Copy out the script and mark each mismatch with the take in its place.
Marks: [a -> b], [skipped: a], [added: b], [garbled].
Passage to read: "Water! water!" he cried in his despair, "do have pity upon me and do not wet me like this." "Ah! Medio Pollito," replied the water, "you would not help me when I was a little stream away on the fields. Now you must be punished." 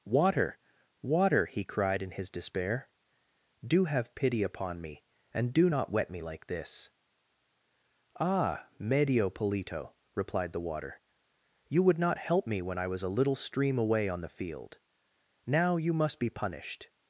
"Water! water!" he cried in his despair, "do have pity upon me and do not wet me like this." "Ah! Medio Pollito," replied the water, "you would not help me when I was a little stream away on the [fields. -> field] Now you must be punished."